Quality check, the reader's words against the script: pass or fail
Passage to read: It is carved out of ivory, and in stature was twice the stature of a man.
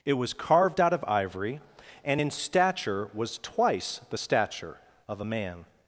fail